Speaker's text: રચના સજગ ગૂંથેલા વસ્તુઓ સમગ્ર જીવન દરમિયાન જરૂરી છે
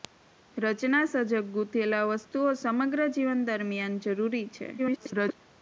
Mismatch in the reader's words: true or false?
true